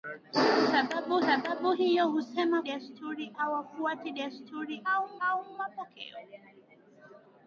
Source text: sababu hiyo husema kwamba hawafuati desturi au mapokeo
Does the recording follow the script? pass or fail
fail